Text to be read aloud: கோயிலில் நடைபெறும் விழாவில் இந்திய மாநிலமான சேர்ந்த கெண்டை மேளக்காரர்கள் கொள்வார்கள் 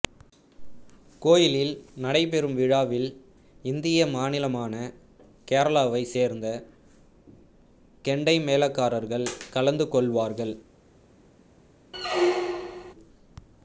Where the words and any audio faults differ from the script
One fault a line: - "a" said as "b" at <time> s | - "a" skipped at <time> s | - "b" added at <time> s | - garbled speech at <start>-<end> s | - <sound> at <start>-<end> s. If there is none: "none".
- "கேரளாவைச்" added at 5.5 s
- "கலந்து" added at 9.5 s
- squeak at 11.9-12.9 s